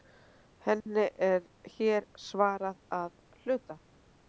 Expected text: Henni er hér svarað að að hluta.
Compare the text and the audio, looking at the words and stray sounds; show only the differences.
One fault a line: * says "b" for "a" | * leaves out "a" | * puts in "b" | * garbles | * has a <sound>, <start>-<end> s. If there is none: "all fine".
* has a dropout, 0.8-0.9 s
* leaves out "að"